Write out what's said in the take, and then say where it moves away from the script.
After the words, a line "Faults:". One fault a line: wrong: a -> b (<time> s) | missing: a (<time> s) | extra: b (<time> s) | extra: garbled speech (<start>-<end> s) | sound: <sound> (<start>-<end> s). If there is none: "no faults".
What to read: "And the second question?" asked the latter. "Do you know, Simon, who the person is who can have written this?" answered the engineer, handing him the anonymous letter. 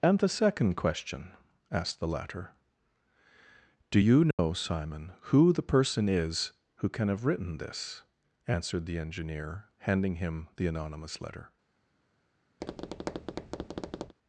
"And the second question?" asked the latter. "Do you know, Simon, who the person is who can have written this?" answered the engineer, handing him the anonymous letter.
Faults:
sound: dropout (4.3-4.4 s)
sound: tap (12.6-14.2 s)